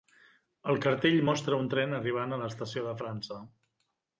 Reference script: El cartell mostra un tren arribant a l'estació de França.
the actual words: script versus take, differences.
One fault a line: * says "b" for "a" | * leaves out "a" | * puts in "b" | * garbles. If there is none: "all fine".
all fine